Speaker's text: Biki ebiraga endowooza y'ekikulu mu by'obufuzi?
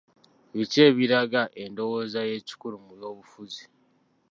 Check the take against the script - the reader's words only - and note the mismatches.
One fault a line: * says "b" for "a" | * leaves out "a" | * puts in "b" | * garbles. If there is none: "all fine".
all fine